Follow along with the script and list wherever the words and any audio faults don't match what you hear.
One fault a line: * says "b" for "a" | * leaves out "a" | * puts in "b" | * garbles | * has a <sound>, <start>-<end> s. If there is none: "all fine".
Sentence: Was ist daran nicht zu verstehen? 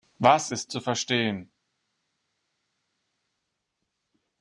* leaves out "daran nicht"